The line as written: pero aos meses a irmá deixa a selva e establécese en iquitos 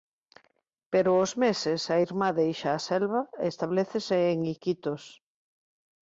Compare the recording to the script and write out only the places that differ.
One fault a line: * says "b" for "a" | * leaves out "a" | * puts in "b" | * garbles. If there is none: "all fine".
all fine